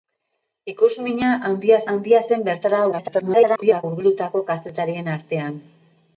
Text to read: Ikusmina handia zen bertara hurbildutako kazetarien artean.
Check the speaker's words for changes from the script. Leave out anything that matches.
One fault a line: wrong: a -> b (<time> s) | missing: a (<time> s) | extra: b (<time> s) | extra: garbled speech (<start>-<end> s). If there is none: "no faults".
extra: handia (1.9 s)
extra: garbled speech (2.9-3.8 s)